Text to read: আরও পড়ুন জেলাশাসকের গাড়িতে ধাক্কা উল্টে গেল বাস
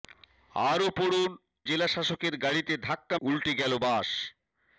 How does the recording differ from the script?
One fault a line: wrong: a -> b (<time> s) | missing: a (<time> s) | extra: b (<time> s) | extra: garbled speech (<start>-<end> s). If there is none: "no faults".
no faults